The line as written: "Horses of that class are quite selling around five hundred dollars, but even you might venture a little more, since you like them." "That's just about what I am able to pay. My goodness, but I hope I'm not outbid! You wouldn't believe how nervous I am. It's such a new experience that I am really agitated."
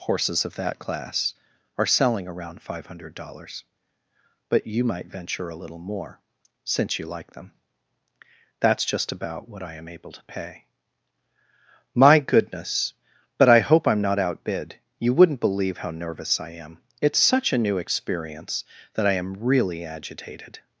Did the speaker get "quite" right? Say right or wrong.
wrong